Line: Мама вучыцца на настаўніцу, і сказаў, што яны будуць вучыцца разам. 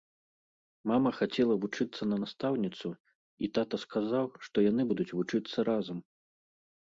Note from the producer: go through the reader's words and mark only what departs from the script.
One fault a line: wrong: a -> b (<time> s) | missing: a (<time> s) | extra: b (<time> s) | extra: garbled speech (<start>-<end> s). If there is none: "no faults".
extra: хацела (1.2 s)
extra: тата (3.6 s)